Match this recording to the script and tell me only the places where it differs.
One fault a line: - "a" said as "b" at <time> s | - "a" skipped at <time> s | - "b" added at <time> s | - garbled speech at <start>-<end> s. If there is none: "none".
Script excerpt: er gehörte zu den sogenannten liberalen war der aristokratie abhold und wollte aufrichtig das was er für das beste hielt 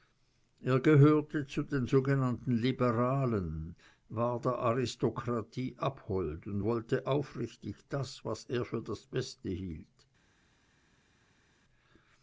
none